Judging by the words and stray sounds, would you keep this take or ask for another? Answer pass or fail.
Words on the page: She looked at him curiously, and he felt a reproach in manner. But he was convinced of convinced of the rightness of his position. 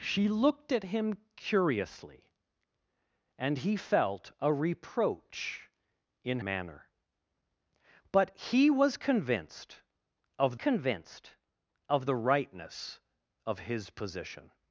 pass